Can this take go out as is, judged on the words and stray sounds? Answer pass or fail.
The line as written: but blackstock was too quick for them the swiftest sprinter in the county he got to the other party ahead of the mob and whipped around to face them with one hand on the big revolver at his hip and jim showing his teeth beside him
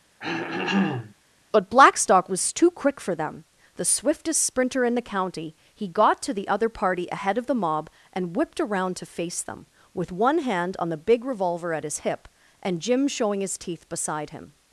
fail